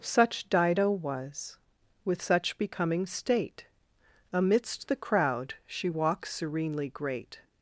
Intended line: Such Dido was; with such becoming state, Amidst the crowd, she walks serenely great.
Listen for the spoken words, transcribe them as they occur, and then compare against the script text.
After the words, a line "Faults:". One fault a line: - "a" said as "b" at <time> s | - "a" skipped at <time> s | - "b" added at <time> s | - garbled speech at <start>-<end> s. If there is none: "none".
Such Dido was; with such becoming state, Amidst the crowd, she walks serenely great.
Faults:
none